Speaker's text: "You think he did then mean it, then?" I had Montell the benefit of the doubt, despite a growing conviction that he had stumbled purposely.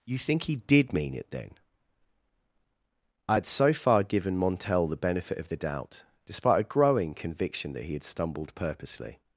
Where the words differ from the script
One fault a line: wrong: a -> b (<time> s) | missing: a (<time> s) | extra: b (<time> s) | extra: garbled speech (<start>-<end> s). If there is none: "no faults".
missing: then (0.9 s)
extra: so far given (3.5 s)